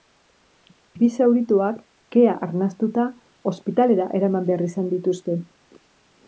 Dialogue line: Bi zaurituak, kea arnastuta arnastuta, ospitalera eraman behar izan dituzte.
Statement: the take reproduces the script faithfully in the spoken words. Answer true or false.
false